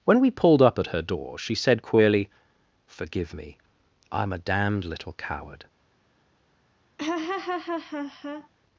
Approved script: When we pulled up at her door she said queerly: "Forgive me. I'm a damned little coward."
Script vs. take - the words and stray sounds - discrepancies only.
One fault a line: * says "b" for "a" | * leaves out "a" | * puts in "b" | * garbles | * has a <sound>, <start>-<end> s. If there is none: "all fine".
* has a laugh, 7.0-8.5 s